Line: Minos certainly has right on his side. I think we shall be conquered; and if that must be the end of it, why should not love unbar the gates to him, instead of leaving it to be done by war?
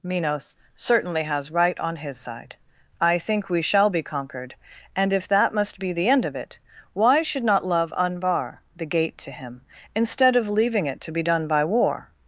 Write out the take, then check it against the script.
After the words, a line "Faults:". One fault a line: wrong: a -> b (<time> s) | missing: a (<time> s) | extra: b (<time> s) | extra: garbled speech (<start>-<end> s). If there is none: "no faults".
Minos certainly has right on his side. I think we shall be conquered; and if that must be the end of it, why should not love unbar the gate to him, instead of leaving it to be done by war?
Faults:
wrong: gates -> gate (8.8 s)